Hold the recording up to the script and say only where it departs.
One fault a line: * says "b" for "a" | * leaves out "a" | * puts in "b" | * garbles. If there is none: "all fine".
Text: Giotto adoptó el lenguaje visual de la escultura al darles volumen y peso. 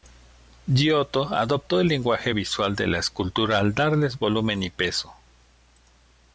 all fine